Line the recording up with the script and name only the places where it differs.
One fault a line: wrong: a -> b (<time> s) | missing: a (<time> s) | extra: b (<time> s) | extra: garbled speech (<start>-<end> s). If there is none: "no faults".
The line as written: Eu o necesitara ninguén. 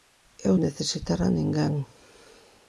no faults